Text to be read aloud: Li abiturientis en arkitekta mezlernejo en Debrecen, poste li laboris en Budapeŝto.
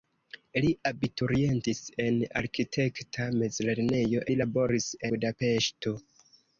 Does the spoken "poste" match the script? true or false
false